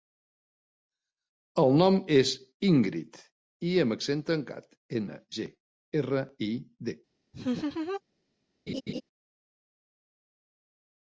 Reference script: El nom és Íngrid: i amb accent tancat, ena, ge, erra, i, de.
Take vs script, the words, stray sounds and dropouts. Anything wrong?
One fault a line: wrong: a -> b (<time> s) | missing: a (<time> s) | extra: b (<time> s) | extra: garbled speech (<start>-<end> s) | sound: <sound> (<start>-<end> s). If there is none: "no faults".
sound: laugh (7.3-8.0 s)
sound: laugh (8.7-9.0 s)